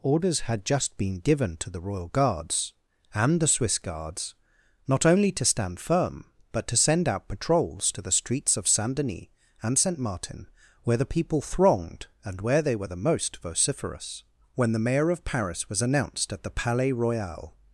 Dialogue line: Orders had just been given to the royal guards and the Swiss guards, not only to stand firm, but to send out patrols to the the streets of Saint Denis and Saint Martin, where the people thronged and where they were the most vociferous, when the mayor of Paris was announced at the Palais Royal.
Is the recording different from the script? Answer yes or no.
yes